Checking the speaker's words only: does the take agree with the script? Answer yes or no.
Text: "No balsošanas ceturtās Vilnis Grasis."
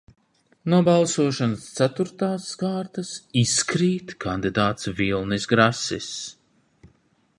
no